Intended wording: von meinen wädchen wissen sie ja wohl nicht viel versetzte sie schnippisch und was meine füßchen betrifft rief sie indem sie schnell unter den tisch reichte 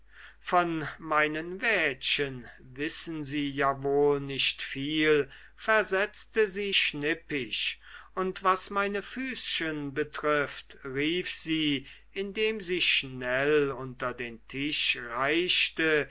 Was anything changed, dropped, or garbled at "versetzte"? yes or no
no